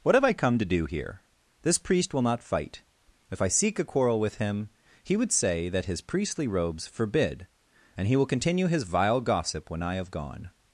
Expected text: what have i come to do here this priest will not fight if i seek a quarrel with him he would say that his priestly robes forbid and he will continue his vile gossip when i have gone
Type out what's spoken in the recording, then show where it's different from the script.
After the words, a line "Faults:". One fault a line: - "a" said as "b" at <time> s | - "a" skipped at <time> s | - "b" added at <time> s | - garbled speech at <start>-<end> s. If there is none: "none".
what have i come to do here this priest will not fight if i seek a quarrel with him he would say that his priestly robes forbid and he will continue his vile gossip when i have gone
Faults:
none